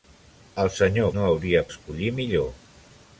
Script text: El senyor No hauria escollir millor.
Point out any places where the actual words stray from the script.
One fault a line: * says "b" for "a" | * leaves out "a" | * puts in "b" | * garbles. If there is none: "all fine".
all fine